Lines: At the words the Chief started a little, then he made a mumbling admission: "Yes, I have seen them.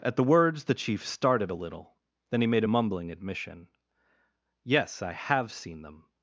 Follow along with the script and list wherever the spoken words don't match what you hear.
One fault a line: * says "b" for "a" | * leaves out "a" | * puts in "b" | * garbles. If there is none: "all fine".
all fine